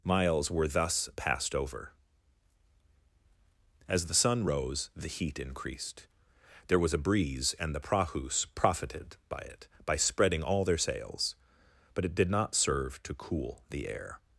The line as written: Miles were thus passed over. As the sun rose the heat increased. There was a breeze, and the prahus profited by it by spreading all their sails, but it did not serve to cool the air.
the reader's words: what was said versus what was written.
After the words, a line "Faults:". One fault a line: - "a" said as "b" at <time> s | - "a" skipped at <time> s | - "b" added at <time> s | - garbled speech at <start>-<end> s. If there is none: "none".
Miles were thus passed over. As the sun rose the heat increased. There was a breeze, and the prahus profited by it by spreading all their sails, but it did not serve to cool the air.
Faults:
none